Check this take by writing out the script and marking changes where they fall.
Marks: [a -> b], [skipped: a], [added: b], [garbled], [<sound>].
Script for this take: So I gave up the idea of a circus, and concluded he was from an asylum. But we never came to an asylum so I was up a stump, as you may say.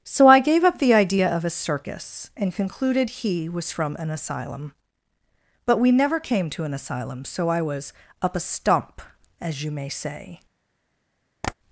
So I gave up the idea of a circus, and concluded he was from an asylum. But we never came to an asylum so I was up a stump, as you may say. [tap]